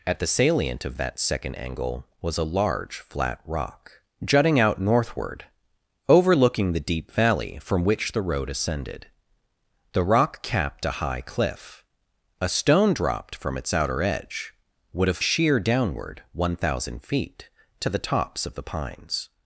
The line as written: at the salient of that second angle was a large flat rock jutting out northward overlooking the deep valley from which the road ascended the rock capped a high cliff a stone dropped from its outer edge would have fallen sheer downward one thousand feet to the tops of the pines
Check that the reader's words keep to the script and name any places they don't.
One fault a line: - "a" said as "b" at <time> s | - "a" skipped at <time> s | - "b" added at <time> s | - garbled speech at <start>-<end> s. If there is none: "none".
- "fallen" skipped at 15.2 s